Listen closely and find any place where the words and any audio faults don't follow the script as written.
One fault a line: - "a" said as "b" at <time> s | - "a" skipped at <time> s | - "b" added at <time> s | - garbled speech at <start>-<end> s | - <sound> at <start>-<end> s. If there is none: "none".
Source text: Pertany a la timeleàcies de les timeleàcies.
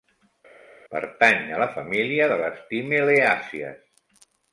- "timeleàcies" said as "família" at 1.7 s